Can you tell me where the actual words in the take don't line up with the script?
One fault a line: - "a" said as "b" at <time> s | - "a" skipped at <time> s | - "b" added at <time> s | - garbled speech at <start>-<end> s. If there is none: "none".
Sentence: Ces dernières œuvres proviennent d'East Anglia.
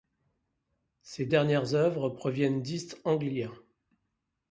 none